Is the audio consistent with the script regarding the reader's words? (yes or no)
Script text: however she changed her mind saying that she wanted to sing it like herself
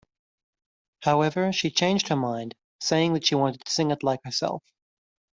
yes